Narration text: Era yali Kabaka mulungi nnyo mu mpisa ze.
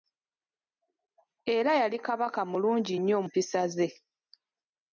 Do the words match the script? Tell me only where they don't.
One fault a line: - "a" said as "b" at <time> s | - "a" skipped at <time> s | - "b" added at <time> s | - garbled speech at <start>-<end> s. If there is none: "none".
- "mu" skipped at 3.2 s